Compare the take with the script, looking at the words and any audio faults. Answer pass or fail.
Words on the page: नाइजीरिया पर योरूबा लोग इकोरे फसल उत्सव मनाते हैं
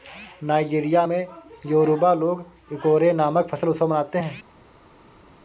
fail